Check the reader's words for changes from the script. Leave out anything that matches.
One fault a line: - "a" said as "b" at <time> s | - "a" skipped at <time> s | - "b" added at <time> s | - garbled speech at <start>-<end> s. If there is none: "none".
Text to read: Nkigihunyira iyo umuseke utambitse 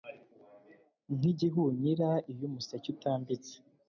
none